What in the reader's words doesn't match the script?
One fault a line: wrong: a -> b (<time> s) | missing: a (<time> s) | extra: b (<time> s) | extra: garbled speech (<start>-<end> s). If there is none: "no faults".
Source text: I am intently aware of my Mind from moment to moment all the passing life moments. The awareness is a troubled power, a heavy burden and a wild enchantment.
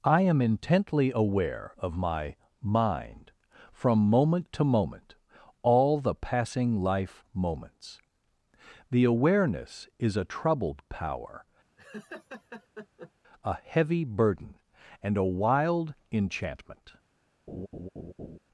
no faults